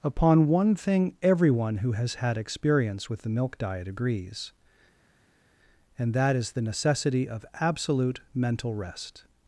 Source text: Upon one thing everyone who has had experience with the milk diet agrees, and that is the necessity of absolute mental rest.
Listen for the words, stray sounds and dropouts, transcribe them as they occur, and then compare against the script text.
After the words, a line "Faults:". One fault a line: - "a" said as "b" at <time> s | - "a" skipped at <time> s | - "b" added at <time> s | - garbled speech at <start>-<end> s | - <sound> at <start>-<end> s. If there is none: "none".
Upon one thing everyone who has had experience with the milk diet agrees, and that is the necessity of absolute mental rest.
Faults:
none